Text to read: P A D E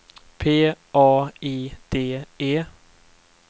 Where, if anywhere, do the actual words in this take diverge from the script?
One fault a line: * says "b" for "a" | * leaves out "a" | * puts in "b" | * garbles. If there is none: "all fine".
* puts in "I"